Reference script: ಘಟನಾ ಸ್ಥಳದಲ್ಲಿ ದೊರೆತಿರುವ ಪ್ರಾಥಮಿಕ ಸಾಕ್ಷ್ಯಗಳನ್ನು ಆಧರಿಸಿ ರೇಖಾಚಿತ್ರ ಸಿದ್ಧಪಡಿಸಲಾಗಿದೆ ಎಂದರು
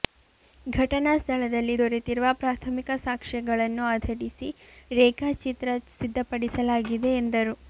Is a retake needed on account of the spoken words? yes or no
no